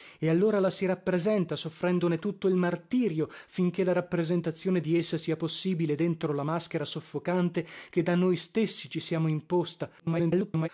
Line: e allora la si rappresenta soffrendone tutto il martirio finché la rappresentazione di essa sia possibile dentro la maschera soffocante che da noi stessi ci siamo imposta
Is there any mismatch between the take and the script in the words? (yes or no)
yes